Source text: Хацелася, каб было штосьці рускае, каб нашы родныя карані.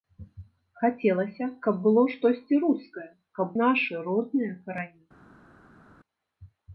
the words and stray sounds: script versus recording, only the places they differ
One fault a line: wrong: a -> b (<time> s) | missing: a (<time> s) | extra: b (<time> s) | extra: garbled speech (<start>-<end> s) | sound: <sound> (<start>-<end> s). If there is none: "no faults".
no faults